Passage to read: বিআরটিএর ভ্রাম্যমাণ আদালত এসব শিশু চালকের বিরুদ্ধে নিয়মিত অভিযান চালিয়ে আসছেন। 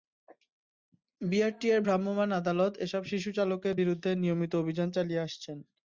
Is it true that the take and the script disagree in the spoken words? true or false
false